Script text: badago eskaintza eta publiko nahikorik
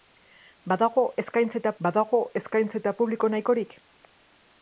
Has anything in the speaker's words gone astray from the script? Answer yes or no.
yes